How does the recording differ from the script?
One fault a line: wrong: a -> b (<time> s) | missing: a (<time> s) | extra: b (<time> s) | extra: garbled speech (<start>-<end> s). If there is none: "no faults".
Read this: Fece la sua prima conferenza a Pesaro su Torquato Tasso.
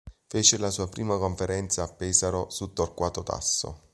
no faults